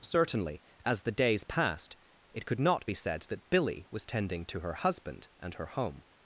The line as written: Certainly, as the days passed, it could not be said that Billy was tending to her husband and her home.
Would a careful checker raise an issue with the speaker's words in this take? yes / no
no